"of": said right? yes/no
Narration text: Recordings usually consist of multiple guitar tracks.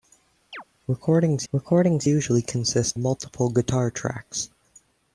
no